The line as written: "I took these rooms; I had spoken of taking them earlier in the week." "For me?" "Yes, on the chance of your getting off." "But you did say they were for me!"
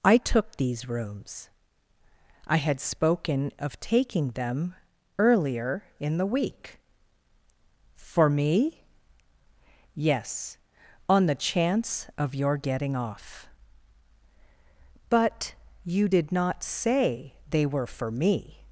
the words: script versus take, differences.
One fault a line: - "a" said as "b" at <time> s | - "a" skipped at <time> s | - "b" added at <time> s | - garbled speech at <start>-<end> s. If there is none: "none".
- "not" added at 16.3 s